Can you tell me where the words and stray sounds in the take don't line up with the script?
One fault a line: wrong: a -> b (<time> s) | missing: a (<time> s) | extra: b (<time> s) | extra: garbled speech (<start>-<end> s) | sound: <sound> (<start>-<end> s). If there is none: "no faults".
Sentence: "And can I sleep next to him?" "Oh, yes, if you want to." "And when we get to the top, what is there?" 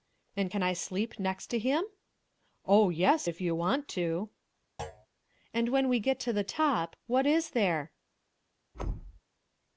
sound: thud (4.8-5.1 s)
sound: thud (8.7-9.2 s)